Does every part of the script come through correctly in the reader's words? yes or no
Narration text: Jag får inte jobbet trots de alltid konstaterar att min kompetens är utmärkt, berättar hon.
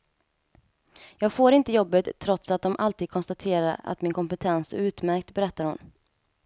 no